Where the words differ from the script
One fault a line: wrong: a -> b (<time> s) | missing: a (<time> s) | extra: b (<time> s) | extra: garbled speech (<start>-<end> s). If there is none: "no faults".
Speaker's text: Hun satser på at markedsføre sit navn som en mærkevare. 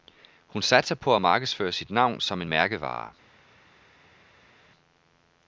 no faults